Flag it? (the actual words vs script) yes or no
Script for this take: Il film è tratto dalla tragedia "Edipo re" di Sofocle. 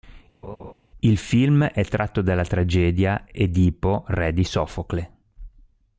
no